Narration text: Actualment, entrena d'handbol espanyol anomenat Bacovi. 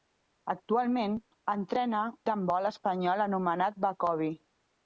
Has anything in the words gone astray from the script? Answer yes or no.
no